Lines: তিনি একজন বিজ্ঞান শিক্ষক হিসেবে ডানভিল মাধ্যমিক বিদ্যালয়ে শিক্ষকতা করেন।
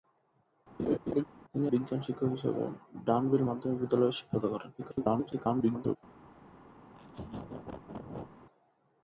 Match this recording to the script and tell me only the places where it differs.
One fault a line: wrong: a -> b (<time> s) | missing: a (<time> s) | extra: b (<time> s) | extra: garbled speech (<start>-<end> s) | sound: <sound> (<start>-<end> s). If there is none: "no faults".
sound: laugh (0.8-1.2 s)
missing: একজন (1.7 s)
extra: garbled speech (4.8-6.0 s)
sound: laugh (6.9-8.3 s)